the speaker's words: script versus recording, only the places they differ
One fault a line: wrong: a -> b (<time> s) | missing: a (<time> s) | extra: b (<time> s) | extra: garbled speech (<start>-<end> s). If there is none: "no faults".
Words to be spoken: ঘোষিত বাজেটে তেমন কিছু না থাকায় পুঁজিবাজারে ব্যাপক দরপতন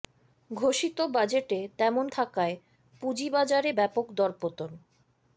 missing: কিছু না (2.0 s)